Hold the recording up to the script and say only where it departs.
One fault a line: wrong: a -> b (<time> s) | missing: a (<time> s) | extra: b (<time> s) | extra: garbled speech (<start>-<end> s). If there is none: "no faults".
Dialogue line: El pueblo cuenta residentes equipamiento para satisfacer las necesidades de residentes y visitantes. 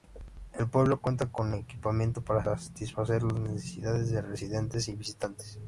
wrong: residentes -> con (1.3 s)